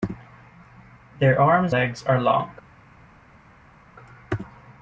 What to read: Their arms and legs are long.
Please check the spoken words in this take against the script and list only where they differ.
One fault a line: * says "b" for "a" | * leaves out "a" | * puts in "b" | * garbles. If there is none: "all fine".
* leaves out "and"